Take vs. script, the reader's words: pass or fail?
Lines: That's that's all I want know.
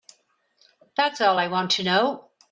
fail